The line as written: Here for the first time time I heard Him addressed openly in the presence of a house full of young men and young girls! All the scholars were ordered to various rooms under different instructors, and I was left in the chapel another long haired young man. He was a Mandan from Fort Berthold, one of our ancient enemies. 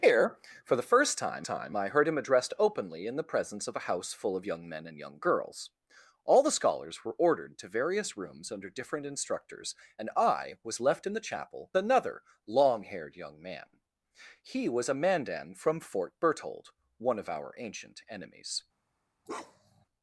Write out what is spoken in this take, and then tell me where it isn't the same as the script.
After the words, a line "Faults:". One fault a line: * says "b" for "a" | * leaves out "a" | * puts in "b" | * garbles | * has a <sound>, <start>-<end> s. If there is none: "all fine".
Here for the first time time I heard Him addressed openly in the presence of a house full of young men and young girls! All the scholars were ordered to various rooms under different instructors, and I was left in the chapel another long haired young man. He was a Mandan from Fort Berthold, one of our ancient enemies.
Faults:
* has a bark, 19.3-19.9 s